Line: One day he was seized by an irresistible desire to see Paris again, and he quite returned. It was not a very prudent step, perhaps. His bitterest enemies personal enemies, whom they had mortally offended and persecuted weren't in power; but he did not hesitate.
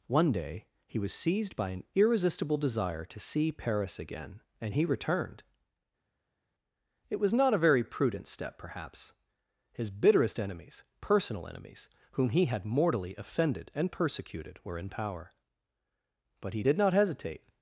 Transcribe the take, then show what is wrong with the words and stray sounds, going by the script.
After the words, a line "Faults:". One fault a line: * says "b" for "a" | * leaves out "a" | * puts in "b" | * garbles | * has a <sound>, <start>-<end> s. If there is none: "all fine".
One day he was seized by an irresistible desire to see Paris again, and he returned. It was not a very prudent step, perhaps. His bitterest enemies personal enemies, whom he had mortally offended and persecuted were in power; but he did not hesitate.
Faults:
* leaves out "quite"
* says "he" for "they"
* says "were" for "weren't"